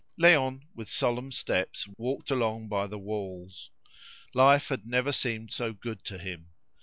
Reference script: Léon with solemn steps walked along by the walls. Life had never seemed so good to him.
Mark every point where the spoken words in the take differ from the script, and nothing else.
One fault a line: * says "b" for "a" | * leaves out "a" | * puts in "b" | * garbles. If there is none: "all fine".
all fine